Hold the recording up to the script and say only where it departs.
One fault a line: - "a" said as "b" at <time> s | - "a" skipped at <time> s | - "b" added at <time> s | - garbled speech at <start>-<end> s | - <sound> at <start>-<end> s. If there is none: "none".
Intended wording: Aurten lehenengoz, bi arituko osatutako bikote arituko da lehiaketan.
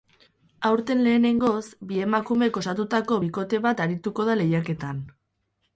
- "arituko" said as "emakumek" at 2.1 s
- "bat" added at 3.7 s